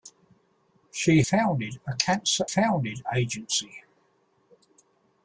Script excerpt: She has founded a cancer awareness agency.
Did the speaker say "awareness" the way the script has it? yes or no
no